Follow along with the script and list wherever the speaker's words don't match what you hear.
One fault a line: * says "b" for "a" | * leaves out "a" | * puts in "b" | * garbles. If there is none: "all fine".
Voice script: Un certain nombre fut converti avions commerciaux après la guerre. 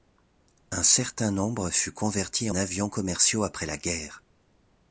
all fine